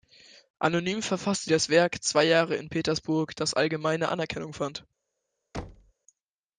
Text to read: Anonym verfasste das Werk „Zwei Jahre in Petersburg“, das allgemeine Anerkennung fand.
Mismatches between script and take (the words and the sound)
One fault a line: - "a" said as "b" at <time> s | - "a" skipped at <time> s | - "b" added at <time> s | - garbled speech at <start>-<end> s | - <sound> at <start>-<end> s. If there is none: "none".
- thud at 5.5-5.9 s